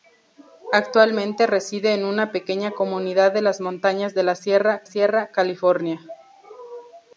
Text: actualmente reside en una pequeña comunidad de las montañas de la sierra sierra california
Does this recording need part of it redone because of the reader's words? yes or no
no